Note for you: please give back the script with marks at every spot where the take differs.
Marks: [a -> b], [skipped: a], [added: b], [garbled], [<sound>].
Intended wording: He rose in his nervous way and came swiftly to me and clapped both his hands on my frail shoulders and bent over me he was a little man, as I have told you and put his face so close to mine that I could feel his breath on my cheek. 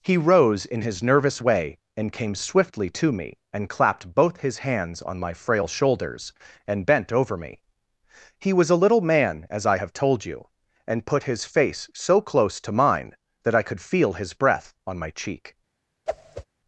He rose in his nervous way and came swiftly to me and clapped both his hands on my frail shoulders and bent over me he was a little man, as I have told you and put his face so close to mine that I could feel his breath on my cheek. [whoosh]